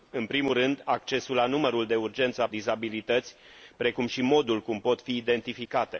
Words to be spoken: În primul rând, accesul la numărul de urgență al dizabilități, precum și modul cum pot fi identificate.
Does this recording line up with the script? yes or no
yes